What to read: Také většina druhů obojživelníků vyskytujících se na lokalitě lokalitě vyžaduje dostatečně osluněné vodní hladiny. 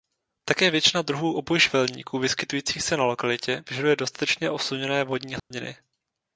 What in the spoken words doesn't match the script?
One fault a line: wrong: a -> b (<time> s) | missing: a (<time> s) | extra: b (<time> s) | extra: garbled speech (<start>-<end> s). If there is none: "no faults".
missing: lokalitě (3.6 s)